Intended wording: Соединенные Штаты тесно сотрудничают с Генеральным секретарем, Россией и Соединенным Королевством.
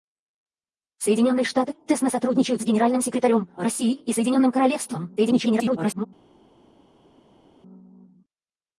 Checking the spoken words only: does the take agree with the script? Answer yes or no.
no